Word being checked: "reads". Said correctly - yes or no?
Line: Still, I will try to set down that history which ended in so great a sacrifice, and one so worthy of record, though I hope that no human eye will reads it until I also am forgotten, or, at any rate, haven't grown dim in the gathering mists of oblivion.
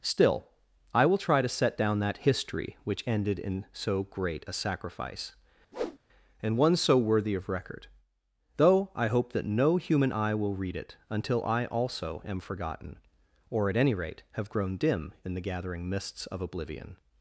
no